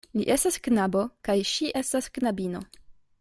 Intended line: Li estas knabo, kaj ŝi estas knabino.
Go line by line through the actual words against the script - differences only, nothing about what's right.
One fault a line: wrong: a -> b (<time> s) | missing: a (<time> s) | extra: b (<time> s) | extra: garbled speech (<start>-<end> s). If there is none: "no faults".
no faults